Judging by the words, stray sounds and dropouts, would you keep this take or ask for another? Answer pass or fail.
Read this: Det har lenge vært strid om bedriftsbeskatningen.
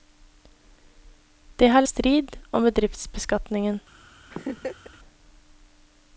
fail